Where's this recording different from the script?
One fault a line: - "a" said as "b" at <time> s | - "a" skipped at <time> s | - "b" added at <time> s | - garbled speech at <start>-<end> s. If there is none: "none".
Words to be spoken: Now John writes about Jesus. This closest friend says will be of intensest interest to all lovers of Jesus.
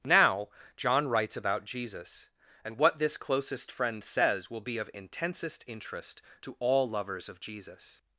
- "And what" added at 2.6 s